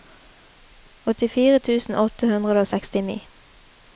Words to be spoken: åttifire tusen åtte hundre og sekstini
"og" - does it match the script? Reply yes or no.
yes